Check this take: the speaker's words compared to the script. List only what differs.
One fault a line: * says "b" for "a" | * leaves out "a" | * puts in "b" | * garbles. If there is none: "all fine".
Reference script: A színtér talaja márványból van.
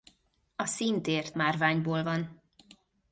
* leaves out "talaja"